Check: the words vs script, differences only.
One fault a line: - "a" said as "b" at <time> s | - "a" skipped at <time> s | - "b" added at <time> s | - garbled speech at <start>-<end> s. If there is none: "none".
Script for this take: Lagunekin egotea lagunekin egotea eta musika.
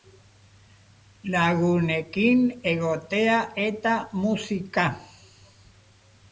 - "lagunekin egotea" skipped at 3.4 s